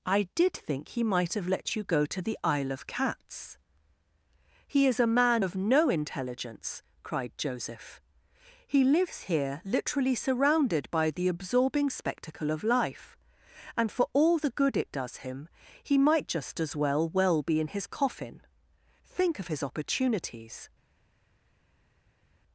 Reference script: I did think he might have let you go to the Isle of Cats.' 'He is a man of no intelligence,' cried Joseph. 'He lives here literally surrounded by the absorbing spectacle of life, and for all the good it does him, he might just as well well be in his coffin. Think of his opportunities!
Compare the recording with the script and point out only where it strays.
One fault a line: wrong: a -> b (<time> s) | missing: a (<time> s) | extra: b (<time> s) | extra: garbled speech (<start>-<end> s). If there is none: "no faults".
no faults